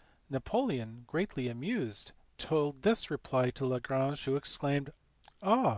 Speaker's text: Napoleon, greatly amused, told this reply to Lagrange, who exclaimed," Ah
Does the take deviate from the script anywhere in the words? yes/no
no